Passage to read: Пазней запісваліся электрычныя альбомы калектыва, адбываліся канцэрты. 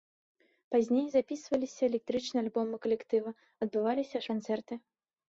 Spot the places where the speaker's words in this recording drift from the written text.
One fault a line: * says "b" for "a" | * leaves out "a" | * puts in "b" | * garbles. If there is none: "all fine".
all fine